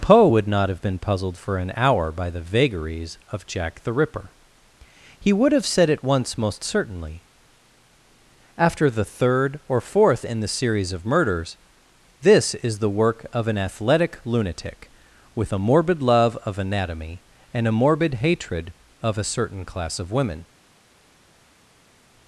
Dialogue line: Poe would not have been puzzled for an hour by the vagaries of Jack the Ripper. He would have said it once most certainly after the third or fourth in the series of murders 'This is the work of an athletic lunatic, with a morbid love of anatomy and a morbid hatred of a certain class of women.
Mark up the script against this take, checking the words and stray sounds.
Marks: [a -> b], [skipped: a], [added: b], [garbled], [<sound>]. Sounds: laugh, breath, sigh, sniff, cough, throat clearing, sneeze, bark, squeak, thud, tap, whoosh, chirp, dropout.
Poe would not have been puzzled for an hour by the vagaries of Jack the Ripper. He would have said it once most certainly after the third or fourth in the series of murders 'This is the work of an athletic lunatic, with a morbid love of anatomy and a morbid hatred of a certain class of women.